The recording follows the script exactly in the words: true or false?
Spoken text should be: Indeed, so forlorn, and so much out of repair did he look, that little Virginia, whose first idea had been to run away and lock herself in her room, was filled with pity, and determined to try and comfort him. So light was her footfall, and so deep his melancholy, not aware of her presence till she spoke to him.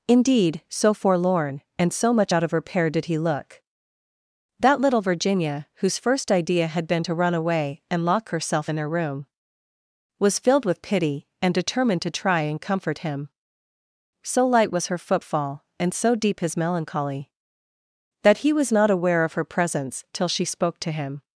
false